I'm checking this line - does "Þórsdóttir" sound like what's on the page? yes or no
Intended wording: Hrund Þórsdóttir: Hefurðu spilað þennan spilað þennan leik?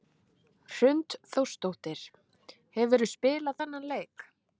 yes